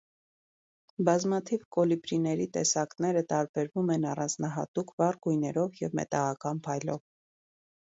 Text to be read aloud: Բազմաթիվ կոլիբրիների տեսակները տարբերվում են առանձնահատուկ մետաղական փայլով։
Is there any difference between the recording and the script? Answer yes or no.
yes